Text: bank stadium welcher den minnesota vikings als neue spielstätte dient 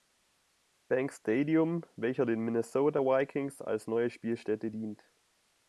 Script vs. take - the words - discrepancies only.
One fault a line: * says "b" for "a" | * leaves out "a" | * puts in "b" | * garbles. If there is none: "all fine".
all fine